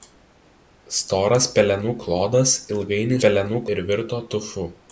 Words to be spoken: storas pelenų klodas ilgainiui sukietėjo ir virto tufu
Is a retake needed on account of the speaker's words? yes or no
yes